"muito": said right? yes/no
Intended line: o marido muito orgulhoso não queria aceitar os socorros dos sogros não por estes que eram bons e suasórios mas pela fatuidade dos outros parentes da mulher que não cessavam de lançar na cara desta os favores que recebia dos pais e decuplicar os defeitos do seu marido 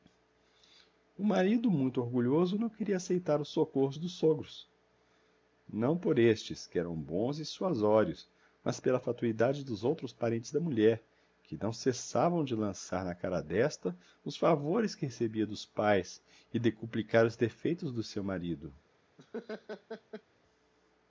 yes